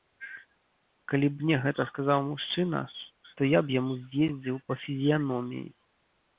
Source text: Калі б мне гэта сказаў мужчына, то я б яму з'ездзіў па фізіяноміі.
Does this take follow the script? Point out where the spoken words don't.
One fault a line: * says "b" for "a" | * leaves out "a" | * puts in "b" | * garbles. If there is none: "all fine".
all fine